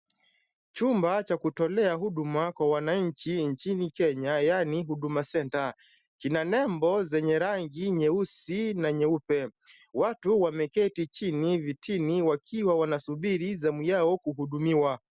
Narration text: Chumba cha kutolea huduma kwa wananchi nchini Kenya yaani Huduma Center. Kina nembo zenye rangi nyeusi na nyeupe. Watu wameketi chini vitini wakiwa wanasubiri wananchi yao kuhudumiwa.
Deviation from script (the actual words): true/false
true